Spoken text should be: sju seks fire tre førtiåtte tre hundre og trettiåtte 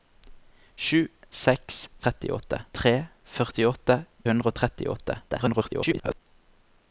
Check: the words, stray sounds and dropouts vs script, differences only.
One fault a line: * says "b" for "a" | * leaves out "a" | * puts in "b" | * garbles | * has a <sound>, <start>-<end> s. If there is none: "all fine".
* says "trettiåtte" for "fire"
* leaves out "tre"
* garbles